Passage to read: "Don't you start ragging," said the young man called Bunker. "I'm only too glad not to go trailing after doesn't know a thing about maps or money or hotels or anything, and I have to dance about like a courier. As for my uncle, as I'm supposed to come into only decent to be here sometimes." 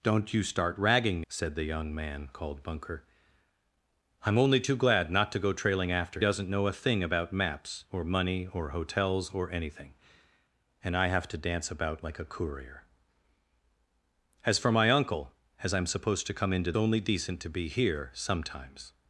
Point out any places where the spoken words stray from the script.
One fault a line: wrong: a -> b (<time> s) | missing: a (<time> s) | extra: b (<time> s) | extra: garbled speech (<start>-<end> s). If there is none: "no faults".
no faults